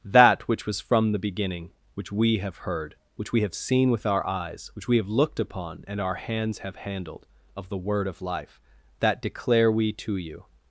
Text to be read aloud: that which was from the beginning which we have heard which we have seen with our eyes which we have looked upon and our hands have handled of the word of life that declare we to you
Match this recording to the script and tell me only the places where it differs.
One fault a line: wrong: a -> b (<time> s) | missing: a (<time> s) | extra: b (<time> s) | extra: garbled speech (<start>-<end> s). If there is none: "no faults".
no faults